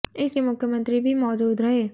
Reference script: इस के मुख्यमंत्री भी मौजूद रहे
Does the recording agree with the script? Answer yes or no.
yes